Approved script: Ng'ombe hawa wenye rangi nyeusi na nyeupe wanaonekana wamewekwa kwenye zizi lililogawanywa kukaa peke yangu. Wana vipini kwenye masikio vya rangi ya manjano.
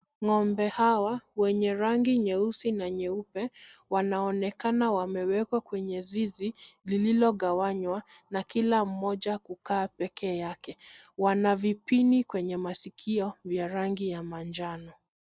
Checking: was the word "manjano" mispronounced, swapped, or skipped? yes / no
no